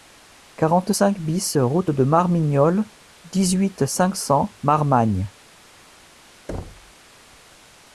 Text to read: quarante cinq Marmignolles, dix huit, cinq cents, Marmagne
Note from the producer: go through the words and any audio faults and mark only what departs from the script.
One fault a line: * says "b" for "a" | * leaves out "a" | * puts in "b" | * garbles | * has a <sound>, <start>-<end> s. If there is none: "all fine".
* puts in "BIS route de"
* has a thud, 6.5-6.9 s